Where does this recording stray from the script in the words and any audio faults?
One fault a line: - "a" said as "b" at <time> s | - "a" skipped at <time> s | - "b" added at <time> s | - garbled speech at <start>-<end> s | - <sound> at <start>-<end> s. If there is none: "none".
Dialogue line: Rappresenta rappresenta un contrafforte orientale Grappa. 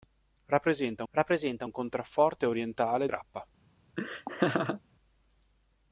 - laugh at 4.0-4.8 s